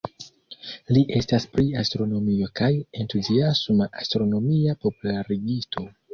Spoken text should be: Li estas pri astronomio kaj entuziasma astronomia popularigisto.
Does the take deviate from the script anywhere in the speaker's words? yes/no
no